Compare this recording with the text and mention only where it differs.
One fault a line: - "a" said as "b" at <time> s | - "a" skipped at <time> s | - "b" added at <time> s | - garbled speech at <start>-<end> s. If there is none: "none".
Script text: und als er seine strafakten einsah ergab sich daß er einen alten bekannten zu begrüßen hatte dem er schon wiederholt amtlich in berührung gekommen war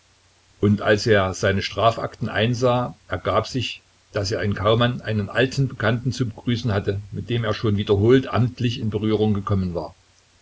- "in kaumann" added at 4.4 s
- "mit" added at 7.1 s